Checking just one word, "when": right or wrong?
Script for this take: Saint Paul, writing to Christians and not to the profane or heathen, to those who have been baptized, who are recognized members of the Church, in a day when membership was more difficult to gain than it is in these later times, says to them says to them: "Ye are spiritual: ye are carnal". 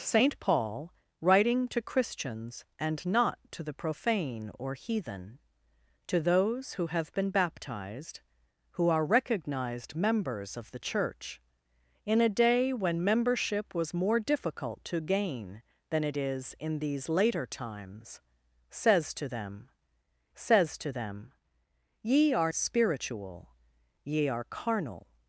right